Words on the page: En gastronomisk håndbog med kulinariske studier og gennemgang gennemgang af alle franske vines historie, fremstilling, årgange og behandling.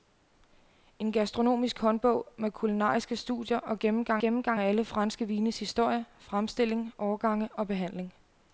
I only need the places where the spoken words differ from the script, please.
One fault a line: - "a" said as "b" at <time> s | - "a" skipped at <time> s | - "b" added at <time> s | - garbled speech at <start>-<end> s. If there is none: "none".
none